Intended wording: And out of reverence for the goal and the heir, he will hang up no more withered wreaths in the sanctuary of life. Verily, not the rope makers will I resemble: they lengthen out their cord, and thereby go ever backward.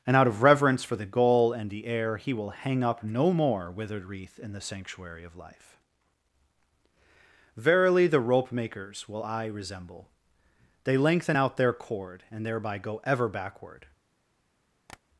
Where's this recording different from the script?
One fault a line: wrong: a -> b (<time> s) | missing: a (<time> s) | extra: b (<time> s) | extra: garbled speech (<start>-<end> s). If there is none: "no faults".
wrong: wreaths -> wreath (4.0 s)
missing: not (8.1 s)